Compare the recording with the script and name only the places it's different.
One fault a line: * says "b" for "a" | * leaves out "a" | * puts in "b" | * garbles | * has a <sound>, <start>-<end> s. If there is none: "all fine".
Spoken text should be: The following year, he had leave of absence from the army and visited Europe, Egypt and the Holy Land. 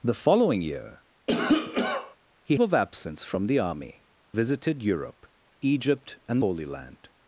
* has a cough, 1.3-2.2 s
* leaves out "had leave"
* leaves out "and"
* leaves out "the"